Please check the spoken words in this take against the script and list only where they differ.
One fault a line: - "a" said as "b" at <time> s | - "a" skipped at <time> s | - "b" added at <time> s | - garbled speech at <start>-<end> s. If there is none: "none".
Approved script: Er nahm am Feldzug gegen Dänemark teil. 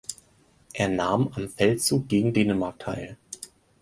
none